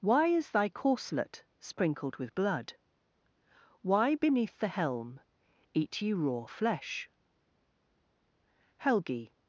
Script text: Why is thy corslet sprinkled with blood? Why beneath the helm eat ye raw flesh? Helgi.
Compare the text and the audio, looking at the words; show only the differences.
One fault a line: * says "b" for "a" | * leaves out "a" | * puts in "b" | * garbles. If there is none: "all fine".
all fine